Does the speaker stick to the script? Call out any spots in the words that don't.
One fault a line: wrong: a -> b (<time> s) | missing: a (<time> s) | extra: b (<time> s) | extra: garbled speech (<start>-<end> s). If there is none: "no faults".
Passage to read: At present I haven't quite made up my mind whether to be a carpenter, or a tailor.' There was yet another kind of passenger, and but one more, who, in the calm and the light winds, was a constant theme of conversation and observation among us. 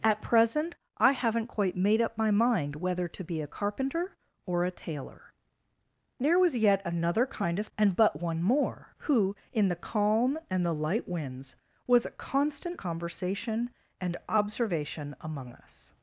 missing: passenger (7.7 s)
missing: theme of (12.8 s)